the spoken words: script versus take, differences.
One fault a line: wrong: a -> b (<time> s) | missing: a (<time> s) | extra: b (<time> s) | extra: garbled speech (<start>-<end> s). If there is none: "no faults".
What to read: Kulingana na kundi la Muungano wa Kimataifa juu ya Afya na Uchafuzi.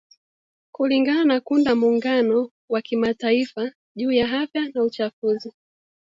no faults